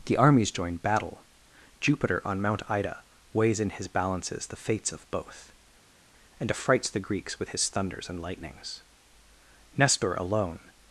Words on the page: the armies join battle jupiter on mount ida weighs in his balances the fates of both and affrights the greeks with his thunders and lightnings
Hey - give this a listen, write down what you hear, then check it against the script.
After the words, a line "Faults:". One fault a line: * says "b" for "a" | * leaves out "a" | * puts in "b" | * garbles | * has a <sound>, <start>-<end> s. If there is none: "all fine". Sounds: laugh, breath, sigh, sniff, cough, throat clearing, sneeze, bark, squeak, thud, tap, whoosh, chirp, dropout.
the armies join battle jupiter on mount ida weighs in his balances the fates of both and affrights the greeks with his thunders and lightnings nestor alone
Faults:
* puts in "nestor alone"